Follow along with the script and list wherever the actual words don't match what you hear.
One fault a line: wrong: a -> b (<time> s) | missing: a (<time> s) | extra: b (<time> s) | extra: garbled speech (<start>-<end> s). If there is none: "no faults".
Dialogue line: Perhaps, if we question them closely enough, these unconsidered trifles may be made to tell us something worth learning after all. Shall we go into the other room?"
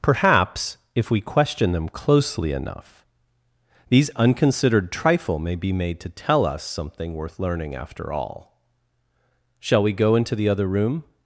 wrong: trifles -> trifle (4.9 s)